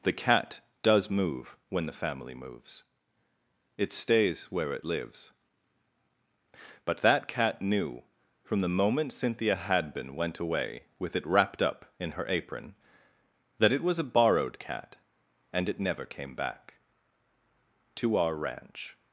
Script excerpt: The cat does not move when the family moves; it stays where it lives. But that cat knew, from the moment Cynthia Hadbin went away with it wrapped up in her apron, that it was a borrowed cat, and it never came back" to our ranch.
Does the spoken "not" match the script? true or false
false